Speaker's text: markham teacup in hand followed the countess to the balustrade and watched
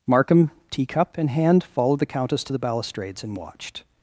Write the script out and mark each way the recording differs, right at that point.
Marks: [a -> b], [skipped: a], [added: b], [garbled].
markham teacup in hand followed the countess to the [balustrade -> balustrades] and watched